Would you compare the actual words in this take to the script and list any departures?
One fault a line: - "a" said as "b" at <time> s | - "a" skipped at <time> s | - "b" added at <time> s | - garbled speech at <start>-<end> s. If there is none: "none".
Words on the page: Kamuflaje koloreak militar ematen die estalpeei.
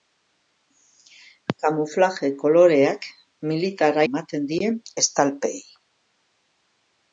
none